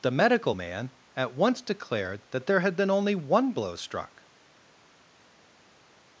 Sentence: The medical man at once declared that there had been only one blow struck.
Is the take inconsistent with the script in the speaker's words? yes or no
no